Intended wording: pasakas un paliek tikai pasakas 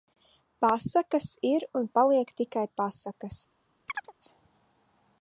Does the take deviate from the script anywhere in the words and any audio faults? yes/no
yes